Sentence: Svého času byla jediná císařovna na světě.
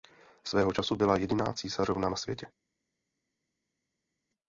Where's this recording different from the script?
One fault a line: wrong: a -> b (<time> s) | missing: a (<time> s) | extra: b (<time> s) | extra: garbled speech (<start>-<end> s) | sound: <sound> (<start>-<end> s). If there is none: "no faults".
no faults